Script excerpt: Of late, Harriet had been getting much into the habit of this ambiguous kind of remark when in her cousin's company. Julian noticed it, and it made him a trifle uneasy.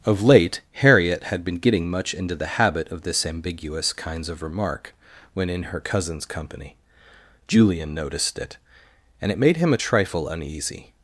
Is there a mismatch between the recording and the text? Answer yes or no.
yes